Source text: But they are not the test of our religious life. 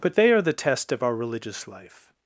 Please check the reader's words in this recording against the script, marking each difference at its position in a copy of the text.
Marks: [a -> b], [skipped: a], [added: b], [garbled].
But they are [skipped: not] the test of our religious life.